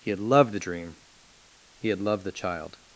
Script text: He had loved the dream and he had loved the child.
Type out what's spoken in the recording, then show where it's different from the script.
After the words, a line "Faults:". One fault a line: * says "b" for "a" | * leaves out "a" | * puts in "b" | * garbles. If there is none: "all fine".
He had loved the dream he had loved the child.
Faults:
* leaves out "and"